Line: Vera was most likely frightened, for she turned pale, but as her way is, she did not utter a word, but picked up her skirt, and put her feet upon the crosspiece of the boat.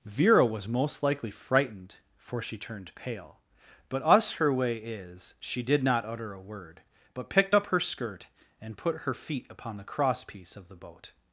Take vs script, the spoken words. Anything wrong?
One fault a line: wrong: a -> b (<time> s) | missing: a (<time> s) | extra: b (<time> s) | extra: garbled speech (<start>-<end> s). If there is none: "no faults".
wrong: as -> us (4.0 s)